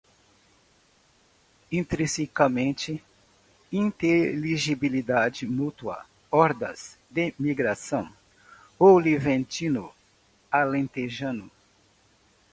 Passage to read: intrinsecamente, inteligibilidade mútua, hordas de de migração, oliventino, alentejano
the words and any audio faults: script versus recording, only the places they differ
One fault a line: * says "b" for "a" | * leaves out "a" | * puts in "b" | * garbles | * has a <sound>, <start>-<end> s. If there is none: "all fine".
* leaves out "de"